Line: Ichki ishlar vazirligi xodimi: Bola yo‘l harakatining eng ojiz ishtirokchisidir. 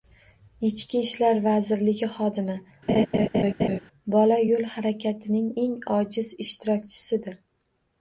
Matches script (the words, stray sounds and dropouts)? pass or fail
fail